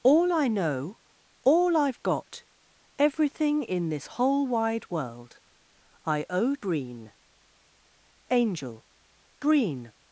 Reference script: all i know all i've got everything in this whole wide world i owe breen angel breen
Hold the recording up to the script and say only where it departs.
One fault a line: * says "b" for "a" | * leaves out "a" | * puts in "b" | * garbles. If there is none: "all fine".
all fine